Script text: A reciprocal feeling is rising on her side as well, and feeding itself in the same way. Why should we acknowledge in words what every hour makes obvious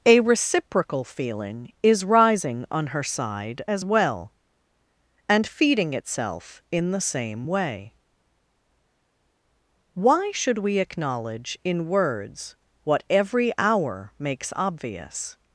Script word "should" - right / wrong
right